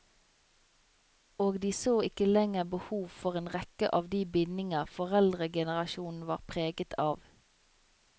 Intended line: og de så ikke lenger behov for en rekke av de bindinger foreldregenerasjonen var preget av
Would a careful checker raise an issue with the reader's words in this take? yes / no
no